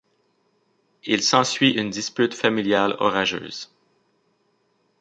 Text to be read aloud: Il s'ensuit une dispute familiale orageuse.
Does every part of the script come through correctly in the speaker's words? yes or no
yes